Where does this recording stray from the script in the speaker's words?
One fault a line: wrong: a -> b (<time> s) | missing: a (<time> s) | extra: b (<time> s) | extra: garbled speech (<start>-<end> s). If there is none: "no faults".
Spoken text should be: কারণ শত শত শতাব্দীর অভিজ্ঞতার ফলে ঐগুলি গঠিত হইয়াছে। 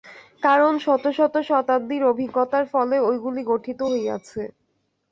no faults